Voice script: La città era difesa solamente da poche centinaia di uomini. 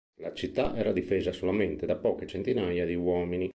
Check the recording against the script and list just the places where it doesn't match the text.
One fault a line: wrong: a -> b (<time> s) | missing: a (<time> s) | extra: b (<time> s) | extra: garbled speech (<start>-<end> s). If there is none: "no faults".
no faults